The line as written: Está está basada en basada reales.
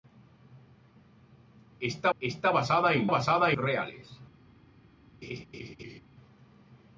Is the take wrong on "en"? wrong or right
right